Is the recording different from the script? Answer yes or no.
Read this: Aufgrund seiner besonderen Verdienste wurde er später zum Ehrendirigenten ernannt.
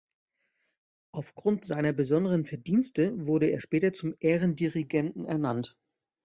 no